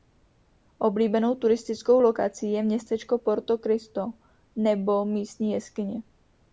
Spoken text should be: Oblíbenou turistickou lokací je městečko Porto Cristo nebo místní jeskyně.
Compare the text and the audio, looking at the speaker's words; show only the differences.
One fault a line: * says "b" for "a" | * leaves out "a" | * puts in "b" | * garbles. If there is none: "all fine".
all fine